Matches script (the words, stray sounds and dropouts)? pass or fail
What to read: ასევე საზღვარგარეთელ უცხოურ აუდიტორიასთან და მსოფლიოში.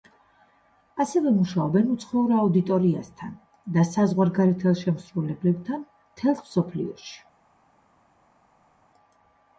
fail